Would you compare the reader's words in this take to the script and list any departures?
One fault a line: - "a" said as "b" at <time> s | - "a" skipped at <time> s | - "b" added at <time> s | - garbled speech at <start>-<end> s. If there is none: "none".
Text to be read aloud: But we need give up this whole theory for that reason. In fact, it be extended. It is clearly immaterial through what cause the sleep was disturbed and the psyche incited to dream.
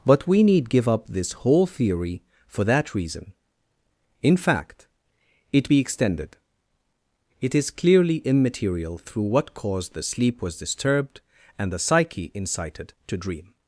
none